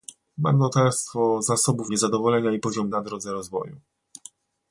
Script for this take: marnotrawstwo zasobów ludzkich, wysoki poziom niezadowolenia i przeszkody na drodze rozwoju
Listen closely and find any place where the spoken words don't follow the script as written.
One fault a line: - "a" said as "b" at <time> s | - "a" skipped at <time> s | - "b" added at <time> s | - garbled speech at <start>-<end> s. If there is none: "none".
- "ludzkich wysoki poziom" skipped at 1.9 s
- "przeszkody" said as "poziom" at 2.6 s